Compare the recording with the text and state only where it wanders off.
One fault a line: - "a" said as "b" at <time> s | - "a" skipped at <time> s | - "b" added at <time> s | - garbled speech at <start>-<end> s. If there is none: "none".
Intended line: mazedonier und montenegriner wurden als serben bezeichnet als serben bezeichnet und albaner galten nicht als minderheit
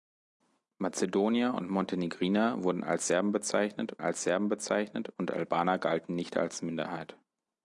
none